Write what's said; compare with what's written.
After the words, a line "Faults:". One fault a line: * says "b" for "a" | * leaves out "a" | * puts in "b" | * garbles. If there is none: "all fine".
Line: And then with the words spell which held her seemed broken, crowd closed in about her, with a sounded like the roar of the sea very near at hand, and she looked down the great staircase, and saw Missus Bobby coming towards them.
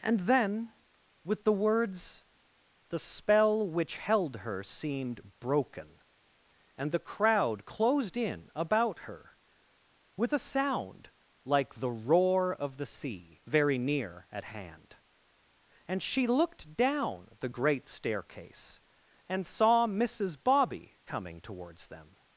And then with the words the spell which held her seemed broken, and the crowd closed in about her, with a sound like the roar of the sea very near at hand, and she looked down the great staircase, and saw Missus Bobby coming towards them.
Faults:
* puts in "the"
* puts in "and the"
* says "sound" for "sounded"